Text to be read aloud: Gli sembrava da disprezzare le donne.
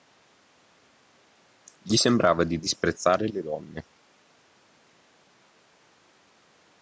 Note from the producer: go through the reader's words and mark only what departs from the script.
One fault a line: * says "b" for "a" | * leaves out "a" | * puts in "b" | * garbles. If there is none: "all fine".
* says "di" for "da"